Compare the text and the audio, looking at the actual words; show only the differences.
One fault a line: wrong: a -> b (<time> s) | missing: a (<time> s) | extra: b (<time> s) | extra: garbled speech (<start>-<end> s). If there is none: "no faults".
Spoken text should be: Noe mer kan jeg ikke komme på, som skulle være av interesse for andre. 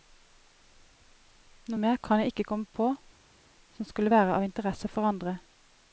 no faults